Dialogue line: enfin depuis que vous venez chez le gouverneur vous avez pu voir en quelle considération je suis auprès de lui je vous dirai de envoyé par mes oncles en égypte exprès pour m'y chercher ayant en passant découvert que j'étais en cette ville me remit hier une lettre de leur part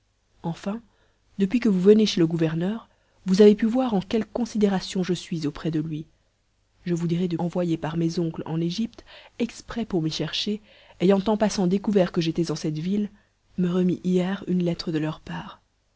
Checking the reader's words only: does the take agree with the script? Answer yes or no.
yes